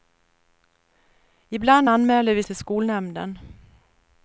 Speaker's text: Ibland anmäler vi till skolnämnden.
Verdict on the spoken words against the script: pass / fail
pass